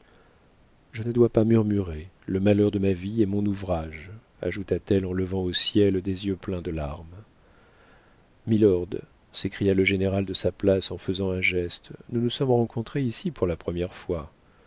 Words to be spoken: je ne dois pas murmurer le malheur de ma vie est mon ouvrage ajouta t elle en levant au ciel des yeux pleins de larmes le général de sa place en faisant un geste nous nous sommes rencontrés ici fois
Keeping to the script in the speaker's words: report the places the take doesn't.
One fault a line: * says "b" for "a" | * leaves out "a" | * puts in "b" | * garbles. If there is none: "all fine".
* puts in "milord s'écria"
* puts in "pour la première"